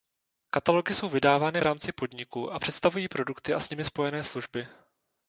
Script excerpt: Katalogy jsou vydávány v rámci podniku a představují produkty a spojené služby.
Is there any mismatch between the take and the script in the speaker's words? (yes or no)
yes